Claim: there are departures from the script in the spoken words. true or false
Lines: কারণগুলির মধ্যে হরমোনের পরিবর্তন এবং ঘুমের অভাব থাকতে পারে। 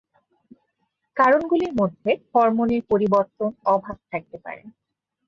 true